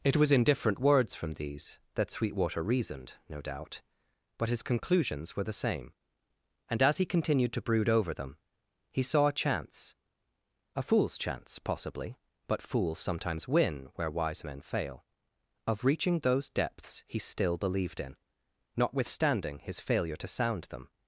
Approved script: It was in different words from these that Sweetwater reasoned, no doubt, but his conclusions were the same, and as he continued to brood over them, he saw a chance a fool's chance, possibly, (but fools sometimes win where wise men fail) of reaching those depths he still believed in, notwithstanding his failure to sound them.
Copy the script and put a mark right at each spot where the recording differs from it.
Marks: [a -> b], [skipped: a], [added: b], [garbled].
It was in different words from these that Sweetwater reasoned, no doubt, but his conclusions were the same, and as he continued to brood over them, he saw a chance a fool's chance, possibly, (but fools sometimes win where wise men fail) of reaching those depths he still believed in, notwithstanding his failure to sound them.